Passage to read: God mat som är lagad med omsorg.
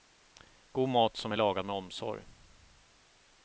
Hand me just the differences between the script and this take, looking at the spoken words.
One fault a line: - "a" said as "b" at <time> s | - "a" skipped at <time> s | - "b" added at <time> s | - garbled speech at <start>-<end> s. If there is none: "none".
none